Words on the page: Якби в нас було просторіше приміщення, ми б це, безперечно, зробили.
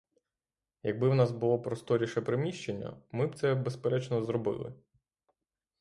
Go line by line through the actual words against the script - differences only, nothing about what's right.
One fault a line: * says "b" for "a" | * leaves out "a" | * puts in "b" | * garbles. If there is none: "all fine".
all fine